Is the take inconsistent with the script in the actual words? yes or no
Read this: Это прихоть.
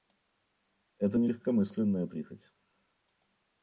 yes